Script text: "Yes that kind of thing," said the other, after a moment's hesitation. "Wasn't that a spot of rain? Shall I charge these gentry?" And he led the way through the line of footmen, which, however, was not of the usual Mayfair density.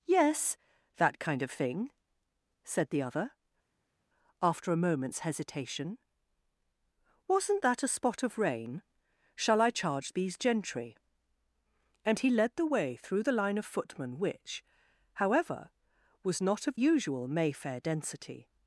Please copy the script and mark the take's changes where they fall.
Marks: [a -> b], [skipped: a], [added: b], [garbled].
"Yes that kind of thing," said the other, after a moment's hesitation. "Wasn't that a spot of rain? Shall I charge these gentry?" And he led the way through the line of footmen, which, however, was not of [skipped: the] usual Mayfair density.